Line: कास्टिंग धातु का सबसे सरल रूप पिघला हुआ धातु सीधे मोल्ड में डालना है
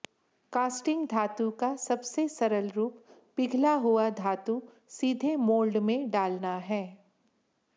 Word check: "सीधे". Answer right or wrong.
right